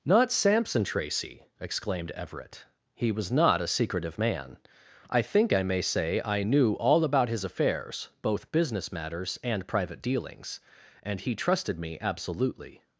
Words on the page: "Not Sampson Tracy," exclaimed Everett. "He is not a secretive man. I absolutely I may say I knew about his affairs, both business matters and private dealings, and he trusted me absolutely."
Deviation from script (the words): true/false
true